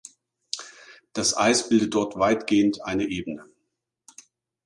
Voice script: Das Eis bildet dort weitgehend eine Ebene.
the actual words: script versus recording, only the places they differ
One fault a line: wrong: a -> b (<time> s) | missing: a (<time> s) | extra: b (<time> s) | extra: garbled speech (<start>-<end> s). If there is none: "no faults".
no faults